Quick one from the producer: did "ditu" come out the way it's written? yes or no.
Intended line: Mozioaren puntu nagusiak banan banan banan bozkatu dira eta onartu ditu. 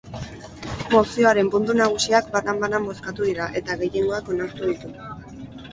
yes